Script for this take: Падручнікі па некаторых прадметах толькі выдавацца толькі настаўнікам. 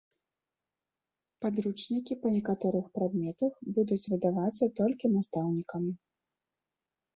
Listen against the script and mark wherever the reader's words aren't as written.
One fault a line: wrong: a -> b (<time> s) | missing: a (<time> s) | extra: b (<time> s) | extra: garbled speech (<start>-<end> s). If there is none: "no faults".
wrong: толькі -> будуць (3.8 s)